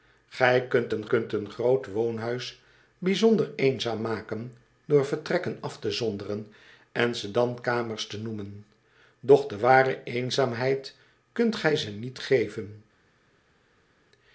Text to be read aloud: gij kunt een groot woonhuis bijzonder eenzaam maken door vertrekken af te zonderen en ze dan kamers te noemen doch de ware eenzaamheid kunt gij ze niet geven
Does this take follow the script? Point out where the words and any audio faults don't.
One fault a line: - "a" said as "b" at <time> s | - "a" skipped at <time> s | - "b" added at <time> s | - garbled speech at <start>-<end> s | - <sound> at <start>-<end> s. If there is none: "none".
- "kunt een" added at 1.1 s